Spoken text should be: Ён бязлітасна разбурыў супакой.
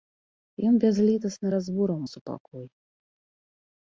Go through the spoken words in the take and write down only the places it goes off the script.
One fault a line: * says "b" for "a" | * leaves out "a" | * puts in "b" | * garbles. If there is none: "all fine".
all fine